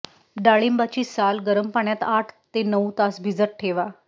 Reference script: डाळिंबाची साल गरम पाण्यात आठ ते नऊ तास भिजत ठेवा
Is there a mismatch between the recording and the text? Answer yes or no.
no